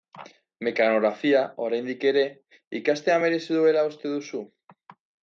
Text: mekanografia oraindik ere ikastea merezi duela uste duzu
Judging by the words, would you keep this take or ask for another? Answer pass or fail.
pass